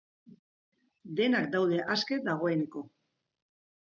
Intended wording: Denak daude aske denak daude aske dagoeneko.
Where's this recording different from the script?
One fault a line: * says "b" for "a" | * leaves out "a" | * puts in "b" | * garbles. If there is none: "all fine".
* leaves out "denak daude aske"